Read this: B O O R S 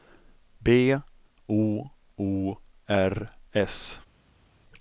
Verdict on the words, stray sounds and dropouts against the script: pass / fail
pass